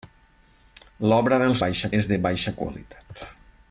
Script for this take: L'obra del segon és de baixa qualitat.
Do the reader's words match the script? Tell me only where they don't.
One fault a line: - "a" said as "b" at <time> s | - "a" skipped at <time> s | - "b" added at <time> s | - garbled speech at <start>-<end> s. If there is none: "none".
- "segon" said as "baixa" at 1.6 s